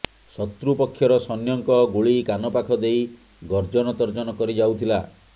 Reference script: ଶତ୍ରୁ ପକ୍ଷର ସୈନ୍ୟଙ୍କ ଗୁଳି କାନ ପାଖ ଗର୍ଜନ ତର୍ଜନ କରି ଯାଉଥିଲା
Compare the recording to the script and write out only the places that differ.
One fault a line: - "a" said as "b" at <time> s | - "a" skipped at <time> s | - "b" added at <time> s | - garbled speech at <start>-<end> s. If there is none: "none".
- "ଦେଇ" added at 2.8 s